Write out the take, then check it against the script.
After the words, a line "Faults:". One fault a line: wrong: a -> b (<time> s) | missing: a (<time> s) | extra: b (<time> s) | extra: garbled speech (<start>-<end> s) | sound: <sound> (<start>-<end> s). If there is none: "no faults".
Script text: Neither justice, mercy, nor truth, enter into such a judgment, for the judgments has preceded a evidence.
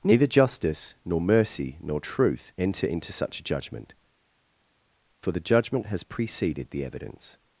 Neither justice, nor mercy, nor truth, enter into such a judgment, for the judgment has preceded the evidence.
Faults:
extra: nor (1.1 s)
wrong: judgments -> judgment (5.4 s)
wrong: a -> the (6.7 s)